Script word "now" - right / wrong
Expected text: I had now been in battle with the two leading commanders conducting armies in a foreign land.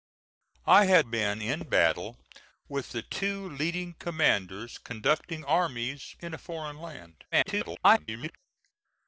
wrong